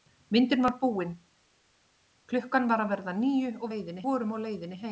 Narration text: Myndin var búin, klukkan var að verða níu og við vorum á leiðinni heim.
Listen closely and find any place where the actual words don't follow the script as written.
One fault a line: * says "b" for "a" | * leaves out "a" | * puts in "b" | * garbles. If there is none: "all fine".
* says "leiðinni" for "við"